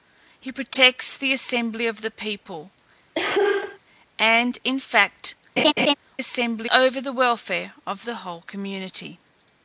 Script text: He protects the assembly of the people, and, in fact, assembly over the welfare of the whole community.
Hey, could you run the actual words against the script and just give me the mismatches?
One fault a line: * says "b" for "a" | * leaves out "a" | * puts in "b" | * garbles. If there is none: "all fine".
all fine